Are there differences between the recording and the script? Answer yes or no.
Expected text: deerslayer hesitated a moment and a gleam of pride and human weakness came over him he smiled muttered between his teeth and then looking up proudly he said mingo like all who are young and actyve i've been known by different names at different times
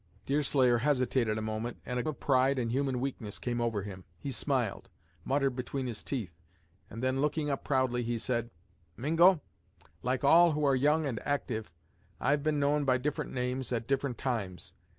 yes